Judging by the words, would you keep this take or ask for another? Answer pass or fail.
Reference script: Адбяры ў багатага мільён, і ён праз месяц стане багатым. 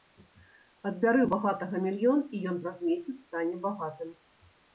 pass